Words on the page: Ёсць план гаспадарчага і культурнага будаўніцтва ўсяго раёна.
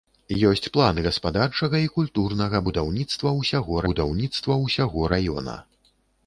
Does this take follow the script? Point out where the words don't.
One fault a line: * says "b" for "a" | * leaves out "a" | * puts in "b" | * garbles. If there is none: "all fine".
* puts in "будаўніцтва ўсяго"